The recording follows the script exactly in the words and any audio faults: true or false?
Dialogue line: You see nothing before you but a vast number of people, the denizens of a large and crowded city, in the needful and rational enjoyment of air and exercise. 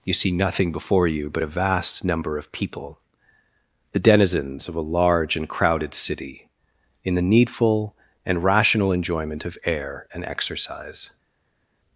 true